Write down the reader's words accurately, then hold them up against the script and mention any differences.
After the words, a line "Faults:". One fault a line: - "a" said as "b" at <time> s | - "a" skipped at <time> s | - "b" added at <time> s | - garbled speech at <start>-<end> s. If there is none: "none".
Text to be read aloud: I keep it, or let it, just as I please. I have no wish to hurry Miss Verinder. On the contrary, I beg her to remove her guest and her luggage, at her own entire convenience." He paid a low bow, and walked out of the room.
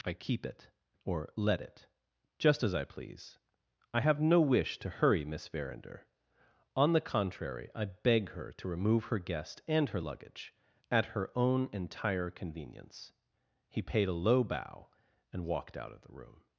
I keep it, or let it, just as I please. I have no wish to hurry Miss Verinder. On the contrary, I beg her to remove her guest and her luggage, at her own entire convenience." He paid a low bow, and walked out of the room.
Faults:
none